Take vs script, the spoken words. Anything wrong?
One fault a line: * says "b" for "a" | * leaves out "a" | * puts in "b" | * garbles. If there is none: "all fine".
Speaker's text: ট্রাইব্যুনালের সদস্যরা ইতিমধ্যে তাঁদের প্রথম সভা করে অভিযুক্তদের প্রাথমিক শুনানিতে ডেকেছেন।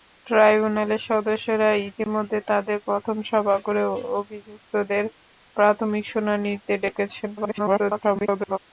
* garbles